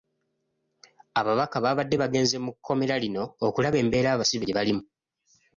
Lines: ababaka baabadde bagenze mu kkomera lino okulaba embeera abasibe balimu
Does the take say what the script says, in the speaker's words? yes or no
no